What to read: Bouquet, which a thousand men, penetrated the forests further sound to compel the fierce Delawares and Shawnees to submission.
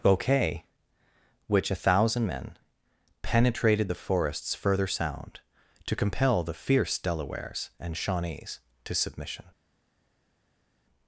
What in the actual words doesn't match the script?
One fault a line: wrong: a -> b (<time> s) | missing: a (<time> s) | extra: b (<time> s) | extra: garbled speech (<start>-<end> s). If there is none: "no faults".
no faults